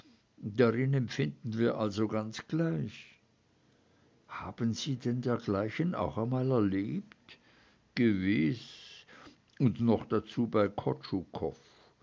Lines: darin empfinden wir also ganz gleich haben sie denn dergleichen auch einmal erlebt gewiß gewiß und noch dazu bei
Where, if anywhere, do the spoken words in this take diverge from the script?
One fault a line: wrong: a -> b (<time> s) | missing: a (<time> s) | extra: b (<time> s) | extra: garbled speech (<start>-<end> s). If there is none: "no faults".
missing: gewiß (9.0 s)